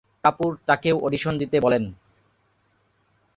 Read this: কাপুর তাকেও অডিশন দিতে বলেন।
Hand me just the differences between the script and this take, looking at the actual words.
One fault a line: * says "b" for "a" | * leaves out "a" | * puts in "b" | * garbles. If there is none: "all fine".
all fine